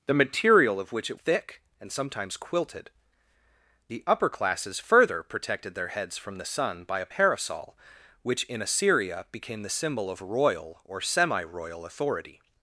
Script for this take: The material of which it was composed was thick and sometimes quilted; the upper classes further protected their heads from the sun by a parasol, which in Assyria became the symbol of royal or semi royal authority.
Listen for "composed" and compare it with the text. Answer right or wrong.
wrong